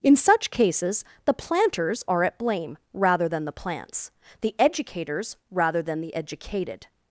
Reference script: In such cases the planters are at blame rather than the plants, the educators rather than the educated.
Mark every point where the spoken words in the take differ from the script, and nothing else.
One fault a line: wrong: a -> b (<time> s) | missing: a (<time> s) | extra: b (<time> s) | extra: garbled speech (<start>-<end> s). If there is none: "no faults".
no faults